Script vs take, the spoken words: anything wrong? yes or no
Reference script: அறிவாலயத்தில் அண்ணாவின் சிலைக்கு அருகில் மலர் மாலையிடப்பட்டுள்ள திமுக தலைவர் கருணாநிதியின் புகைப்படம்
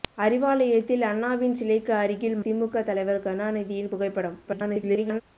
yes